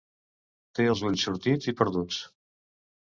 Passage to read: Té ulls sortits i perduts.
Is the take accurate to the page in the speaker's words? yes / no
no